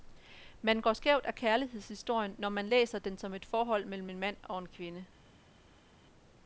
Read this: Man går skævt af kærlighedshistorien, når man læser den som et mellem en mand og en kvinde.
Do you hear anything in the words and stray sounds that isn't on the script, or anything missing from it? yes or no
yes